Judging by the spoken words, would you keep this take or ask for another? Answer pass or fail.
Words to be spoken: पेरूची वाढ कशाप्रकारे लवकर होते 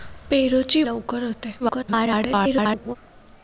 fail